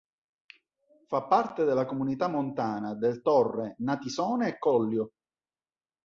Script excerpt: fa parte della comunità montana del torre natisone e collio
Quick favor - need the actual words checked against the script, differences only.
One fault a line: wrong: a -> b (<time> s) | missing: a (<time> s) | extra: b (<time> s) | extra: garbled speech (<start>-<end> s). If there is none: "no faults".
no faults